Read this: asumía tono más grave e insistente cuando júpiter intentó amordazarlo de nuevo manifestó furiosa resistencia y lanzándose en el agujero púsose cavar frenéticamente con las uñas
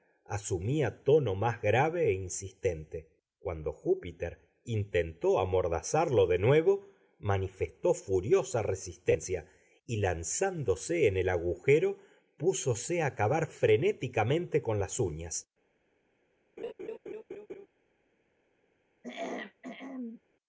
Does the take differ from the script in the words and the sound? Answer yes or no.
yes